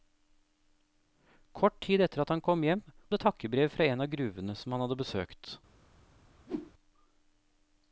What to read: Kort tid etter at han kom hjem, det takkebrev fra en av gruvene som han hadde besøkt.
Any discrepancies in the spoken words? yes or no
no